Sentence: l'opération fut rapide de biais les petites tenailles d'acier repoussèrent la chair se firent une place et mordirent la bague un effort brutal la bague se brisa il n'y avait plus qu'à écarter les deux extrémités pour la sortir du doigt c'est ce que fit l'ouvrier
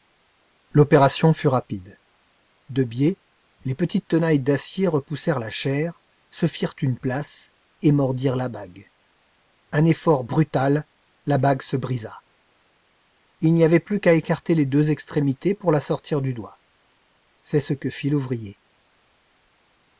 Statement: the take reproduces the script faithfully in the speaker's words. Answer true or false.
true